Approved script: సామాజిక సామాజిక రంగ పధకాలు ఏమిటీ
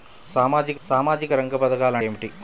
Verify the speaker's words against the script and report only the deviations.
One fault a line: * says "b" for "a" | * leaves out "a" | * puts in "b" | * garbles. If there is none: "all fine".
all fine